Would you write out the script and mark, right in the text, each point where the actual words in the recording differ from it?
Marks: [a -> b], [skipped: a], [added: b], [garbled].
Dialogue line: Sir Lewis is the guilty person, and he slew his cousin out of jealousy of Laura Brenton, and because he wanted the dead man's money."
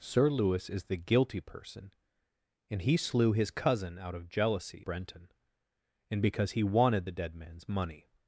Sir Lewis is the guilty person, and he slew his cousin out of jealousy [skipped: of Laura] Brenton, and because he wanted the dead man's money."